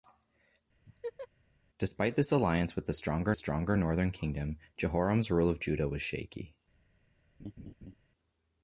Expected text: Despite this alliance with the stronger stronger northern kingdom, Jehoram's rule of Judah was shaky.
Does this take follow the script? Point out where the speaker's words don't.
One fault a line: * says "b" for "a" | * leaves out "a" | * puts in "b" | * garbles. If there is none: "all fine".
all fine